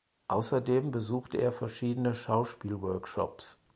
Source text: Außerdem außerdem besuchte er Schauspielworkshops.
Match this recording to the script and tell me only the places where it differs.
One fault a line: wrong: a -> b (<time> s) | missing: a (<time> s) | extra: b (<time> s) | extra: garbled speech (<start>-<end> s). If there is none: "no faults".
missing: außerdem (0.9 s)
extra: verschiedene (1.5 s)